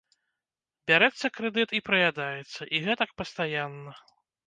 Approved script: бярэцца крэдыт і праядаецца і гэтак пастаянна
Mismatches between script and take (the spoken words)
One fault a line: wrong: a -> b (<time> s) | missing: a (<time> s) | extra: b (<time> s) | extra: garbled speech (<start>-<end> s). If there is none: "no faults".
no faults